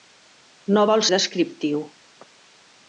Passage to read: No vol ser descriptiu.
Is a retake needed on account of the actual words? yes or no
yes